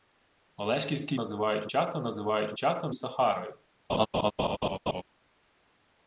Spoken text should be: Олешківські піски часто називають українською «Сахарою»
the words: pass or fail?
fail